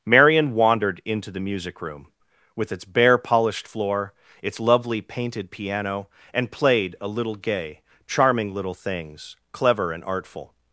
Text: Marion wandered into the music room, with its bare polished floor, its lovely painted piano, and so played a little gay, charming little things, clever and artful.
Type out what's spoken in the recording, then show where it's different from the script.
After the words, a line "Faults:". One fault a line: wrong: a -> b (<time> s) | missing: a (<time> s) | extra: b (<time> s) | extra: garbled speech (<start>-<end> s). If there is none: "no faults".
Marion wandered into the music room, with its bare polished floor, its lovely painted piano, and played a little gay, charming little things, clever and artful.
Faults:
missing: so (6.5 s)